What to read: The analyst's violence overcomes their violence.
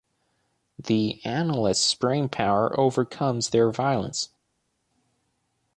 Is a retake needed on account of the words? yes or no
yes